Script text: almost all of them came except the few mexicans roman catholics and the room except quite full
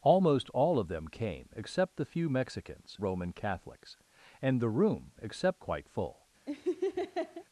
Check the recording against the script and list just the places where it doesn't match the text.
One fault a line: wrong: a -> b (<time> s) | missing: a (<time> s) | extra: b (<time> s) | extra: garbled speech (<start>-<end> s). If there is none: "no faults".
no faults